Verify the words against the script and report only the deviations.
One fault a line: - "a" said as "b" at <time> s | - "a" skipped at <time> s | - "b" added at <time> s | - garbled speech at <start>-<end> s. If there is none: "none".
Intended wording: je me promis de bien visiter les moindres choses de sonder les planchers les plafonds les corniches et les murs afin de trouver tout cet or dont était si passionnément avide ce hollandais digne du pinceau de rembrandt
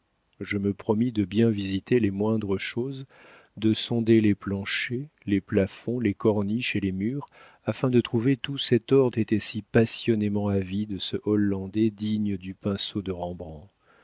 - "dont" skipped at 9.1 s